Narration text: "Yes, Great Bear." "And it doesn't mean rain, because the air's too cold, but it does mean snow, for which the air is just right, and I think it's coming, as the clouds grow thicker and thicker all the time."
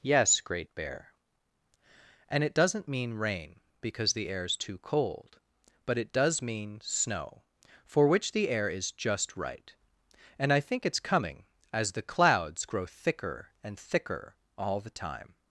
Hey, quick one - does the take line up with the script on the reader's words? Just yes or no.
yes